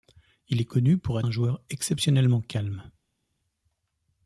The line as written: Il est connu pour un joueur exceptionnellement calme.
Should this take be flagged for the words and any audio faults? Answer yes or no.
no